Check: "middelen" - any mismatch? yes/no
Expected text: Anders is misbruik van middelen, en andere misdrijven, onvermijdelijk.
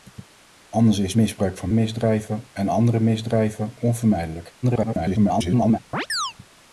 yes